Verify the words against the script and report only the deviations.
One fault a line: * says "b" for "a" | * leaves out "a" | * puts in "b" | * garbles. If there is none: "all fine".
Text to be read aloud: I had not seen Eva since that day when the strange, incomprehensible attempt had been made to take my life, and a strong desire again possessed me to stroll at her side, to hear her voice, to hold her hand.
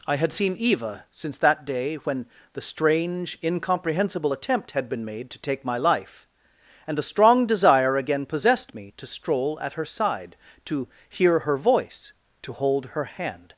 * leaves out "not"